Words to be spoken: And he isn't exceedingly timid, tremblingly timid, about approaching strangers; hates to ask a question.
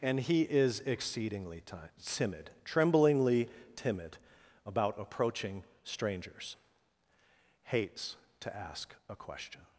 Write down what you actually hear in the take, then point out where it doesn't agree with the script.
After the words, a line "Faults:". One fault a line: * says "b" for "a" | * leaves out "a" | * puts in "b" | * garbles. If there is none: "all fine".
And he is exceedingly timid, tremblingly timid, about approaching strangers; hates to ask a question.
Faults:
* says "is" for "isn't"